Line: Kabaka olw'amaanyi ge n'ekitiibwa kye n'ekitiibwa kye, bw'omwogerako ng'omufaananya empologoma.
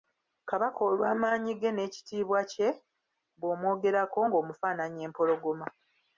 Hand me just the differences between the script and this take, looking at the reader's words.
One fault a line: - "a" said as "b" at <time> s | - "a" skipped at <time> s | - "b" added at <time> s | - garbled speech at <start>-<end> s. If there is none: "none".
- "n'ekitiibwa kye" skipped at 2.7 s